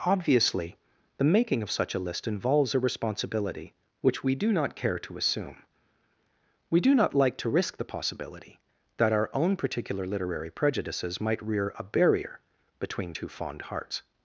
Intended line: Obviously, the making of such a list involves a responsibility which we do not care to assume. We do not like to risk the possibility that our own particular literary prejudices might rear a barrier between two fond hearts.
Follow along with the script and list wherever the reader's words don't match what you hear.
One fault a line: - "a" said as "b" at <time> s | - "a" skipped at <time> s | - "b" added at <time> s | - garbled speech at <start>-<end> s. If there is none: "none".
none